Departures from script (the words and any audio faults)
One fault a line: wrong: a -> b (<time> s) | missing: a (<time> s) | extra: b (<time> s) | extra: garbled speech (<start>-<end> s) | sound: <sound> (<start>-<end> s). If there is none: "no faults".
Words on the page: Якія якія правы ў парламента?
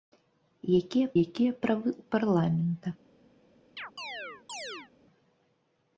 sound: chirp (3.8-4.9 s)